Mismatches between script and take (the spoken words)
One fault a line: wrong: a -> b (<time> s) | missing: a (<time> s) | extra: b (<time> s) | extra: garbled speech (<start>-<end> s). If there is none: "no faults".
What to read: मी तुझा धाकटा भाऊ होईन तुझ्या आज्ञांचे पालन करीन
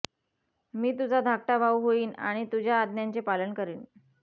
extra: आणि (2.2 s)